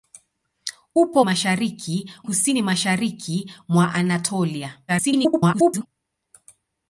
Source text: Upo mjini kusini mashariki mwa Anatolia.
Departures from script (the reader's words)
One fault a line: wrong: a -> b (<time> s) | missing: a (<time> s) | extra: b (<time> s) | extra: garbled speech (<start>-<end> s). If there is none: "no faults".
wrong: mjini -> mashariki (1.2 s)
extra: garbled speech (4.9-5.9 s)